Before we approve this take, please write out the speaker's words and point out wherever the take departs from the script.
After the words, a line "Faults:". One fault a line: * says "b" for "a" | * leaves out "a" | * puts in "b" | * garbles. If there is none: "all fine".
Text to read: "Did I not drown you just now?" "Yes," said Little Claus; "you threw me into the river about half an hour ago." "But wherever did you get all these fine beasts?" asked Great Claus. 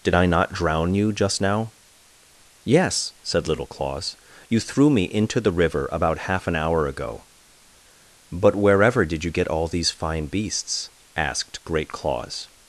"Did I not drown you just now?" "Yes," said Little Claus; "you threw me into the river about half an hour ago." "But wherever did you get all these fine beasts?" asked Great Claus.
Faults:
all fine